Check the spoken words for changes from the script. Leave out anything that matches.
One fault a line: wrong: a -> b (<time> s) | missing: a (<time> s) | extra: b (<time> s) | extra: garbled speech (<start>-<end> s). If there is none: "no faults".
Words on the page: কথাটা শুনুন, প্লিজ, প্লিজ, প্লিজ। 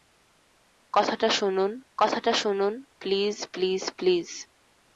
extra: কথাটা শুনুন (2.0 s)